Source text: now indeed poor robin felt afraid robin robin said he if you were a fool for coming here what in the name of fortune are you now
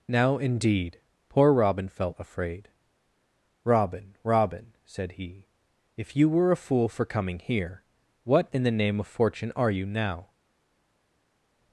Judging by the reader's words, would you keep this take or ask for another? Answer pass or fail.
pass